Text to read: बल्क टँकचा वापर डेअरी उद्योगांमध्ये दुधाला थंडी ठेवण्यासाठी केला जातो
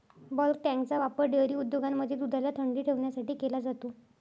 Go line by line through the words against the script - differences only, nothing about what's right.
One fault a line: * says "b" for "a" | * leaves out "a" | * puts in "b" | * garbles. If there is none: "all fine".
all fine